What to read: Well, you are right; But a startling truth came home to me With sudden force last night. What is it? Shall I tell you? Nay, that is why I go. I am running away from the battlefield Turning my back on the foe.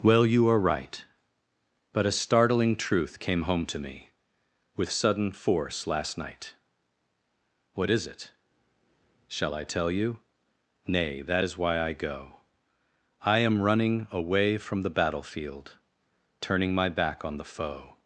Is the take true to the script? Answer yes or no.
yes